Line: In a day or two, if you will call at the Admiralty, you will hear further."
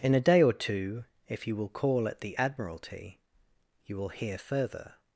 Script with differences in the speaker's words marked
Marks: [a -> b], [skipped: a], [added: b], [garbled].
In a day or two, if you will call at the Admiralty, you will hear further."